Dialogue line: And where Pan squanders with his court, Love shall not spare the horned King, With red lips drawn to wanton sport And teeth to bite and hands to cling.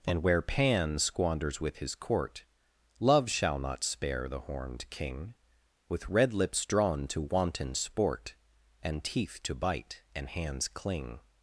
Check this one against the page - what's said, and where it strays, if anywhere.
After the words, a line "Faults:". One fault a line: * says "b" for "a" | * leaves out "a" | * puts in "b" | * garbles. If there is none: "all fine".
And where Pan squanders with his court, Love shall not spare the horned King, With red lips drawn to wanton sport And teeth to bite and hands cling.
Faults:
* leaves out "to"